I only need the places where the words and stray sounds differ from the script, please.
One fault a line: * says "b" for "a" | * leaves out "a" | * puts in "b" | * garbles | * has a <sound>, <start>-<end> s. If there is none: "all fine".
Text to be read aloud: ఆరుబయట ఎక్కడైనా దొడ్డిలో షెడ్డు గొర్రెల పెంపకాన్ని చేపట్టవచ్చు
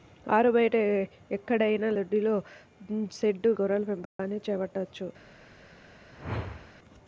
* has a dropout, 4.0-4.2 s
* has a whoosh, 6.1-6.7 s